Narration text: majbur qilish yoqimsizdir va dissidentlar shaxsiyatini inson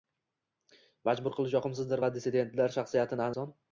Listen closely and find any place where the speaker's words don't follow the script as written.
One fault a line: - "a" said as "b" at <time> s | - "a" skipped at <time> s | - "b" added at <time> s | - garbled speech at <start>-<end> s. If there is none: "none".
none